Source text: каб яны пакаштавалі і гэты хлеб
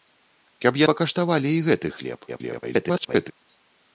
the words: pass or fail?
fail